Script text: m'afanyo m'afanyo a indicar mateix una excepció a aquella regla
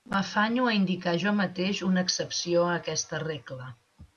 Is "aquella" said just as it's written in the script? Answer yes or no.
no